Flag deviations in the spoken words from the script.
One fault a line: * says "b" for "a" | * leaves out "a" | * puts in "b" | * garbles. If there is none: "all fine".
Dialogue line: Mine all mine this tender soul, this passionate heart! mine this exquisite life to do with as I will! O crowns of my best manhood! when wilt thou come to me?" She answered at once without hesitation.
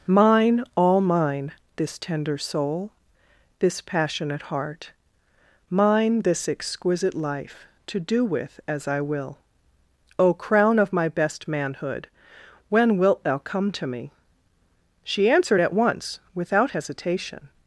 * says "crown" for "crowns"